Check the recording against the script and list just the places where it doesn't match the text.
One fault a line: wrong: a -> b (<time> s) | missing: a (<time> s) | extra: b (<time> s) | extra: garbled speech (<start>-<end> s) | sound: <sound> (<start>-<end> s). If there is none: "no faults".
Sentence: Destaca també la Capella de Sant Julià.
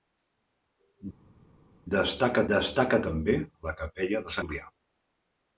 extra: destaca (2.5 s)
missing: Sant (4.4 s)